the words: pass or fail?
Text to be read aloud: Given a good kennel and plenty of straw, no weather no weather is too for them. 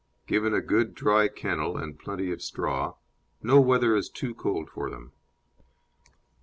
fail